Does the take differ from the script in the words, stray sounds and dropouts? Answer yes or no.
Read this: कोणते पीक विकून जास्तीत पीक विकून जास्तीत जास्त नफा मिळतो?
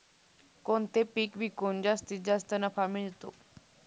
yes